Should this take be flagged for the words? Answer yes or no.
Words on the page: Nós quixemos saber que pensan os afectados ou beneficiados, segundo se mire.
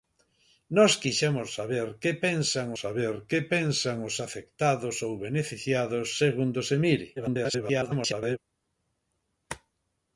yes